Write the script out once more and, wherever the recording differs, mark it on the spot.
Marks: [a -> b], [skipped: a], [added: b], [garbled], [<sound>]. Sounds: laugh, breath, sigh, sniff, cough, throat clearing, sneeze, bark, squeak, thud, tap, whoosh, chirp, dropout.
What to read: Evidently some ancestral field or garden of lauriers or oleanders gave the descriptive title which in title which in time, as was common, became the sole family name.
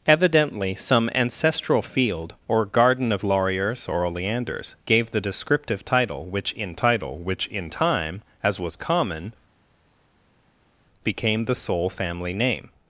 Evidently some ancestral field or garden of lauriers or oleanders gave the descriptive title which in title which in time, as was common, became the sole family name.